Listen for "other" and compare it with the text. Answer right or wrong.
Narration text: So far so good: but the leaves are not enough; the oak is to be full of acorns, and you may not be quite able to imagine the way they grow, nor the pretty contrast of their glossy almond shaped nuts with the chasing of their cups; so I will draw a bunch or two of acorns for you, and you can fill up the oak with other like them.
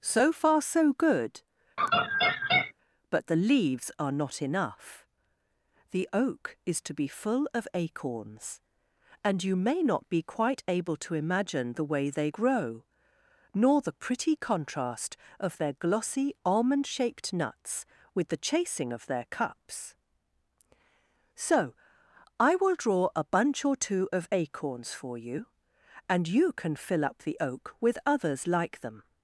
wrong